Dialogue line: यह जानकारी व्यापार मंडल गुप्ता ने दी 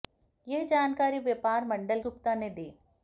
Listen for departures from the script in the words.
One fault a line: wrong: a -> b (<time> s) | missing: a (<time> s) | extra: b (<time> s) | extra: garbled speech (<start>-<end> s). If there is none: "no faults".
no faults